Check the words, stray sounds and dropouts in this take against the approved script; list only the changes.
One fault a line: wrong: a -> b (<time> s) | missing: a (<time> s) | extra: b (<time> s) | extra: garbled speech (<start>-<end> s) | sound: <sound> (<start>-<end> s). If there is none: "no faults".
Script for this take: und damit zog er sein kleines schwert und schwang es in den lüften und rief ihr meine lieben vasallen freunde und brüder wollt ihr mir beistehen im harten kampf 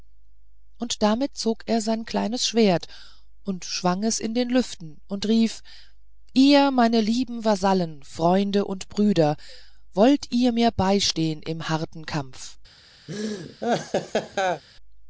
sound: laugh (13.1-14.6 s)